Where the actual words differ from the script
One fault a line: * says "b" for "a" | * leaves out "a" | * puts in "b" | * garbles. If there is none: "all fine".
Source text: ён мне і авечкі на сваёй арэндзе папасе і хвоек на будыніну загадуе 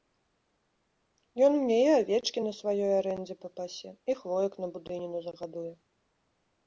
all fine